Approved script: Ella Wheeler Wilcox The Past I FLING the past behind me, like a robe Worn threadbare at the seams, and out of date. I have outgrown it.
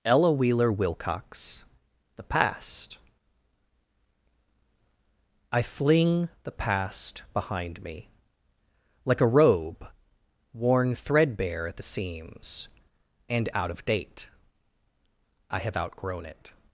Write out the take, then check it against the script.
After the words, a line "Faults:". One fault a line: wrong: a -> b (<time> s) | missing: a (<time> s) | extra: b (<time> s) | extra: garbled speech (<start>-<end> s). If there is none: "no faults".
Ella Wheeler Wilcox The Past I FLING the past behind me, like a robe Worn threadbare at the seams, and out of date. I have outgrown it.
Faults:
no faults